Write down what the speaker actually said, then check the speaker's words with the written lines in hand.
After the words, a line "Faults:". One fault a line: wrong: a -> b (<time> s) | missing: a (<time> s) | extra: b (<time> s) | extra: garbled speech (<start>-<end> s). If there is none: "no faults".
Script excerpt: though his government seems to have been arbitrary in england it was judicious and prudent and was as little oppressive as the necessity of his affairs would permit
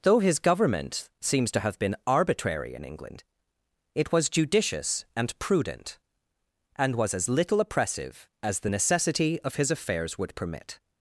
though his government seems to have been arbitrary in england it was judicious and prudent and was as little oppressive as the necessity of his affairs would permit
Faults:
no faults